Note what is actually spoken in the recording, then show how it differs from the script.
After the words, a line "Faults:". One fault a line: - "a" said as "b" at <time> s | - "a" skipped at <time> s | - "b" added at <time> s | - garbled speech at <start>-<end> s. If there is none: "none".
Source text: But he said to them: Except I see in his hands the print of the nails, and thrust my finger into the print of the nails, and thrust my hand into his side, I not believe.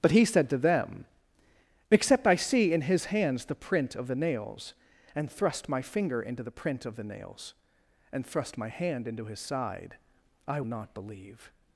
But he said to them: Except I see in his hands the print of the nails, and thrust my finger into the print of the nails, and thrust my hand into his side, I not believe.
Faults:
none